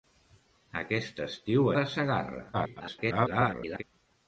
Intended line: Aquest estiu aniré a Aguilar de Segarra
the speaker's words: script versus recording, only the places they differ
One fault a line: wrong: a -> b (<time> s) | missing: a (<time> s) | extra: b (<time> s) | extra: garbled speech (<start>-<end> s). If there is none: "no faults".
missing: aniré a Aguilar (1.7 s)
extra: garbled speech (2.5-3.8 s)